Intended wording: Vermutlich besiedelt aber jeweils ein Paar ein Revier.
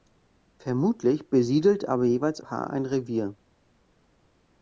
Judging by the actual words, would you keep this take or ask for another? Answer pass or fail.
fail